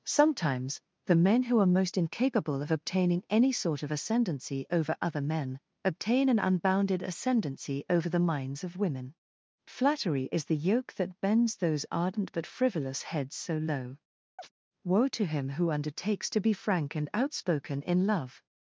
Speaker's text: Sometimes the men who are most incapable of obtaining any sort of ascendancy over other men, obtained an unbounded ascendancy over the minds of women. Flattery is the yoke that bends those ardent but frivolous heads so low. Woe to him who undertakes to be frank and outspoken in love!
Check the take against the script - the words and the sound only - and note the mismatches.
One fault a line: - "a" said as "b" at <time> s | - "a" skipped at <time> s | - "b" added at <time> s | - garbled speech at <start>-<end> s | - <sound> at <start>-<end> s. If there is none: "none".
- "obtained" said as "obtain" at 5.8 s
- chirp at 14.4-14.5 s